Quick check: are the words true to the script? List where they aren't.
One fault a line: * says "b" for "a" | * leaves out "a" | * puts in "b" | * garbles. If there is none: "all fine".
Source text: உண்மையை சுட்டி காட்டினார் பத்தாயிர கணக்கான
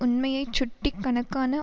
* leaves out "காட்டினார் பத்தாயிர"